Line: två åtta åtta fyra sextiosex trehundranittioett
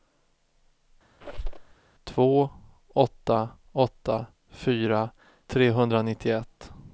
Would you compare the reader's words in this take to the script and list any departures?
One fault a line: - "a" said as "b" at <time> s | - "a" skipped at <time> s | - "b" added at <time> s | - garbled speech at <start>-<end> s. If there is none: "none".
- "sextiosex" skipped at 5.1 s